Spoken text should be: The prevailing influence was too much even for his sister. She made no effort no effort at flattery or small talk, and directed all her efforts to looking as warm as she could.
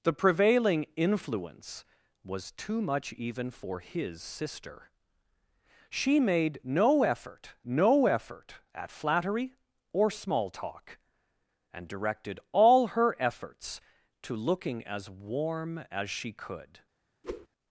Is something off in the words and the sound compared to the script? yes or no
yes